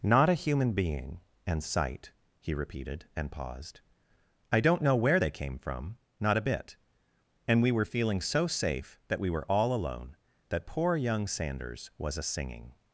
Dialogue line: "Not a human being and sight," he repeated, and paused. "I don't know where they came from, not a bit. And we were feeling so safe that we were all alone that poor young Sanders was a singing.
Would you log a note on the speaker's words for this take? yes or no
no